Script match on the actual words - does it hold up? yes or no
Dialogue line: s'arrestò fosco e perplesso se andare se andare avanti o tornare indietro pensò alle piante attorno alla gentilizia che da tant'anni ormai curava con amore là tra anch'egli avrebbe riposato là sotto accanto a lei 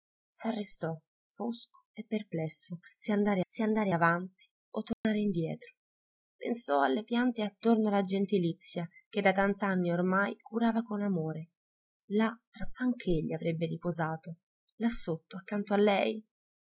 yes